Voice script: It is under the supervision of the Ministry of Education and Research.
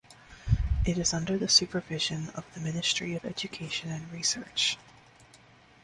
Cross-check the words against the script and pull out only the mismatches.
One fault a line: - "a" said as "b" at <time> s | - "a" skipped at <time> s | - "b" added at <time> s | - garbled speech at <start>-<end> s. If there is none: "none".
none